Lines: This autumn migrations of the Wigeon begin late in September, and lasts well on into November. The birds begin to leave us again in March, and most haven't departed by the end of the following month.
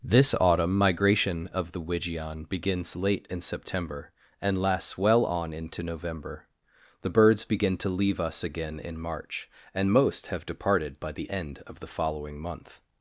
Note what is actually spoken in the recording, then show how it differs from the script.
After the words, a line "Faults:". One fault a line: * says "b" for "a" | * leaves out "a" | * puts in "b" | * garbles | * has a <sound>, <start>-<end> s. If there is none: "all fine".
This autumn migration of the Wigeon begins late in September, and lasts well on into November. The birds begin to leave us again in March, and most have departed by the end of the following month.
Faults:
* says "migration" for "migrations"
* says "begins" for "begin"
* says "have" for "haven't"